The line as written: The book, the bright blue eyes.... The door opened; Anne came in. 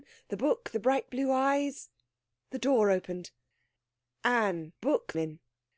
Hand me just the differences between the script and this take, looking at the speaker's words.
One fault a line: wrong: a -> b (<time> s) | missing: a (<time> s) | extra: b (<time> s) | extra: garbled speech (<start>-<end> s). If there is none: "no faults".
wrong: came -> book (4.8 s)